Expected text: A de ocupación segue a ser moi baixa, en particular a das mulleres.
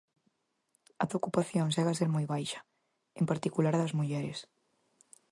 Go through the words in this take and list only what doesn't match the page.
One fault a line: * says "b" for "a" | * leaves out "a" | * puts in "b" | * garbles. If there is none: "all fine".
all fine